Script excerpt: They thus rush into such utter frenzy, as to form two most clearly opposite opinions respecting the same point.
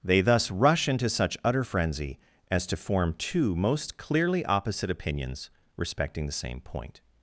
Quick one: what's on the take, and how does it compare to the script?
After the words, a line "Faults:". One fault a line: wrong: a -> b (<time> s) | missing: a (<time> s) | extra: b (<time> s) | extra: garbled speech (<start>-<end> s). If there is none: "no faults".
They thus rush into such utter frenzy, as to form two most clearly opposite opinions respecting the same point.
Faults:
no faults